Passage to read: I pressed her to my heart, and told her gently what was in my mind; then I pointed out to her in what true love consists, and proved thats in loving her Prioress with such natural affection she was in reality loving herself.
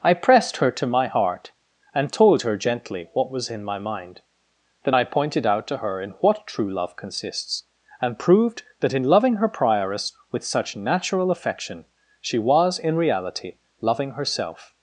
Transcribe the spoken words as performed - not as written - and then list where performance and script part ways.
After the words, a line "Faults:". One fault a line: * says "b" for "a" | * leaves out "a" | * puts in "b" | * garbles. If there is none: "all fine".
I pressed her to my heart, and told her gently what was in my mind; then I pointed out to her in what true love consists, and proved that in loving her Prioress with such natural affection she was in reality loving herself.
Faults:
* says "that" for "thats"